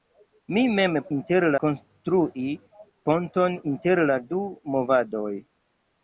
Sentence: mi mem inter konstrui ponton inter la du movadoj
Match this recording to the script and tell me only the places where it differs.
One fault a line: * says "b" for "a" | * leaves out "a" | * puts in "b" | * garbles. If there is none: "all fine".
all fine